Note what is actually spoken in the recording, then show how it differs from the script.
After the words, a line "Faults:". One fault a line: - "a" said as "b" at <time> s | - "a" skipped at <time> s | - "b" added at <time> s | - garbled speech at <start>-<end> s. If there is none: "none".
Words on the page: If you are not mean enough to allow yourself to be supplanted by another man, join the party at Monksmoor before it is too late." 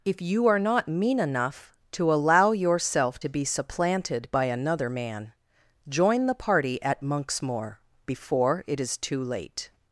If you are not mean enough to allow yourself to be supplanted by another man, join the party at Monksmoor before it is too late."
Faults:
none